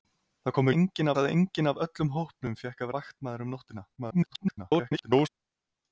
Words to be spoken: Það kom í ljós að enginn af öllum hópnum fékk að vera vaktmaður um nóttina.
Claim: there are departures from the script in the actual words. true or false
true